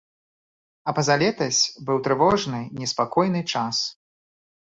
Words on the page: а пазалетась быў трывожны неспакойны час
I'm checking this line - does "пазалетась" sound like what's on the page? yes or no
yes